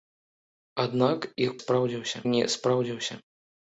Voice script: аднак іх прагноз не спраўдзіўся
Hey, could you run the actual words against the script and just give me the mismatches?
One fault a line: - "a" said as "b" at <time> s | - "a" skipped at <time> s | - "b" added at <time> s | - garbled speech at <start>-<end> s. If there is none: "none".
- "прагноз" said as "спраўдзіўся" at 1.6 s